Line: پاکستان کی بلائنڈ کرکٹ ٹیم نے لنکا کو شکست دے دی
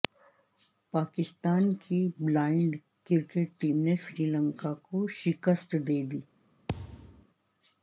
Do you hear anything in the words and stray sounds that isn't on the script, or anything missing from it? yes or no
yes